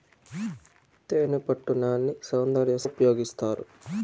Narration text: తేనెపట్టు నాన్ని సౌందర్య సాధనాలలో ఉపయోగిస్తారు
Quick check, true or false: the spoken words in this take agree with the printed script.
false